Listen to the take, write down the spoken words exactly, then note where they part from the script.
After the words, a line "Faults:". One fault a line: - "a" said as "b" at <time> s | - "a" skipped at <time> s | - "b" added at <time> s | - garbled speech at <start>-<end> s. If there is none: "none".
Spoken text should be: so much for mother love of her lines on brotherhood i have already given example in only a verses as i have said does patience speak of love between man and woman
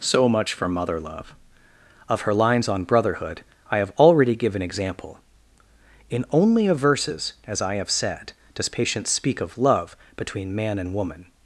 so much for mother love of her lines on brotherhood i have already given example in only a verses as i have said does patience speak of love between man and woman
Faults:
none